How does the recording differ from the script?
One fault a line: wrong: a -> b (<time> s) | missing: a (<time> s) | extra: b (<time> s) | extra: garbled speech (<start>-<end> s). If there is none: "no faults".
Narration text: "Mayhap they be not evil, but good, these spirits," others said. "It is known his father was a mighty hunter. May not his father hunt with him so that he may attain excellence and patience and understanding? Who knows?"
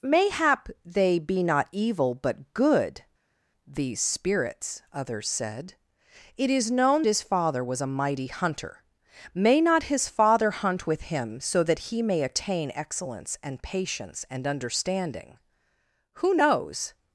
no faults